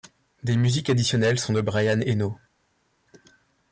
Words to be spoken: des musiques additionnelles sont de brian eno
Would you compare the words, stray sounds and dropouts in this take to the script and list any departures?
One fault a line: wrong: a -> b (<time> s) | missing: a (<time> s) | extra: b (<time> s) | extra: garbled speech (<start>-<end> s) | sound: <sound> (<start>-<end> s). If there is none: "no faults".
no faults